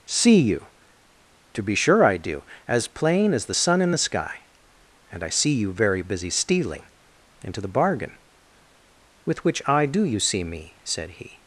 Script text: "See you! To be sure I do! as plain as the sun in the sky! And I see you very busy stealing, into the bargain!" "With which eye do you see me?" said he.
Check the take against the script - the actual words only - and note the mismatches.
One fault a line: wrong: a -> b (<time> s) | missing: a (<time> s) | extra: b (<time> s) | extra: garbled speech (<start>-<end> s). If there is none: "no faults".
no faults